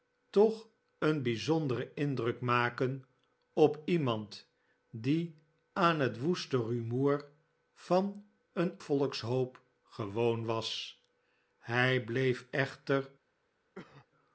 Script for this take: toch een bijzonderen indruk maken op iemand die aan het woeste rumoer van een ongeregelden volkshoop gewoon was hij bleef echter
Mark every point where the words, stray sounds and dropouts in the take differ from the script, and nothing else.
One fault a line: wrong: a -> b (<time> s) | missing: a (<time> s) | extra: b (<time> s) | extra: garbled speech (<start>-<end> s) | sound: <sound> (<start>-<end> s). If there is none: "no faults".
missing: ongeregelden (8.8 s)
sound: cough (13.8-14.1 s)